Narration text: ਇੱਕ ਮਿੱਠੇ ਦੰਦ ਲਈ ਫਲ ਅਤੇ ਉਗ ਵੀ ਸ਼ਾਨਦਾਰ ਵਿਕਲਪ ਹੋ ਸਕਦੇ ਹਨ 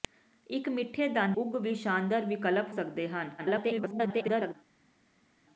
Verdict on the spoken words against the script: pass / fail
fail